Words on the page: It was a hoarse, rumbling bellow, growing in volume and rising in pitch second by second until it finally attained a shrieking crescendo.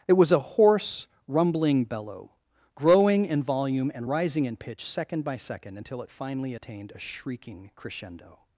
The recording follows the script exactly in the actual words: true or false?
true